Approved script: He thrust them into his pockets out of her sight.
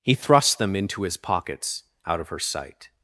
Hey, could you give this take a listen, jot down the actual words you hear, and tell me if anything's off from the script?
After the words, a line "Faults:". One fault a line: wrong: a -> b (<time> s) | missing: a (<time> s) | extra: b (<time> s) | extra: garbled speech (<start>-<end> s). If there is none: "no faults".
He thrust them into his pockets out of her sight.
Faults:
no faults